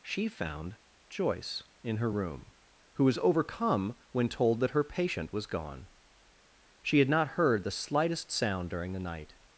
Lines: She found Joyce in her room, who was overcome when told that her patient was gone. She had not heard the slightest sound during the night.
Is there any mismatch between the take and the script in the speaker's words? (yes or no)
no